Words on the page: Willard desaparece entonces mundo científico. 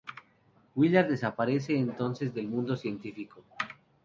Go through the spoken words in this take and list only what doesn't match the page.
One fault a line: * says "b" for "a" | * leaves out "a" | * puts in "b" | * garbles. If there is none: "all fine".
* puts in "del"